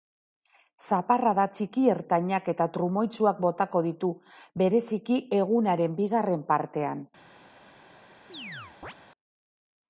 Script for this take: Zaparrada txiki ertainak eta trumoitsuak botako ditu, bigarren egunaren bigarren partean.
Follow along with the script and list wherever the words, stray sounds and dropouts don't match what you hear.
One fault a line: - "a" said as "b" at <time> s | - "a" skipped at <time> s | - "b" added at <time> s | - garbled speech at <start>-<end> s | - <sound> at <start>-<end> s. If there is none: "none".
- "bigarren" said as "bereziki" at 4.6 s
- chirp at 8.3-8.9 s